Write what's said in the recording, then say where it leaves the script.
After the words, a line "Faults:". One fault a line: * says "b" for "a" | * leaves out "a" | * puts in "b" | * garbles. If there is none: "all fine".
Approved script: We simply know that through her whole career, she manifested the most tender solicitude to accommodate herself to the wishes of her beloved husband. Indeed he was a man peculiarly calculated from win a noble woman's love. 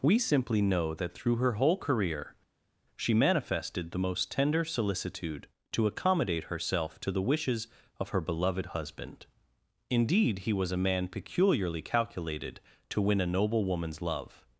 We simply know that through her whole career, she manifested the most tender solicitude to accommodate herself to the wishes of her beloved husband. Indeed he was a man peculiarly calculated to win a noble woman's love.
Faults:
* says "to" for "from"